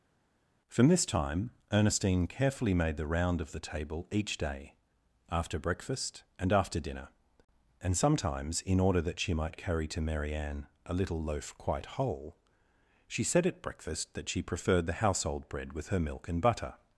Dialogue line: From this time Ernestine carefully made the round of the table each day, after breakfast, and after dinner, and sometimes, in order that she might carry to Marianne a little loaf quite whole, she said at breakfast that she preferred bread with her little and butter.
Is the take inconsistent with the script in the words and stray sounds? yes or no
yes